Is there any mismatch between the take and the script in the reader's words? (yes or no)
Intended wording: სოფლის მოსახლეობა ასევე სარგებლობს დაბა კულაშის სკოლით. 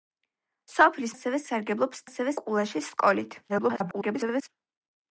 yes